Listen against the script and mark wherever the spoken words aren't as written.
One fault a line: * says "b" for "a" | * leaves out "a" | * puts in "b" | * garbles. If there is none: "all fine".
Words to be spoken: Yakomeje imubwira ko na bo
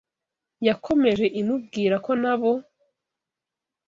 all fine